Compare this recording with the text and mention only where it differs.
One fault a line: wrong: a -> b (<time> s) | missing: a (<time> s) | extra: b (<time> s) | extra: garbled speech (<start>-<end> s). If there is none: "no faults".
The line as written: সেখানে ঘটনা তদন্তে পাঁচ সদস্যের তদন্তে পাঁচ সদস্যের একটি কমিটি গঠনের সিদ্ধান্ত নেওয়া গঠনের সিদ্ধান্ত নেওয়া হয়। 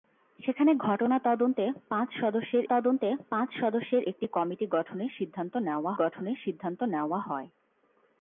no faults